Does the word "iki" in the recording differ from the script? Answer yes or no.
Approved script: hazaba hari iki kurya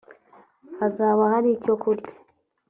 yes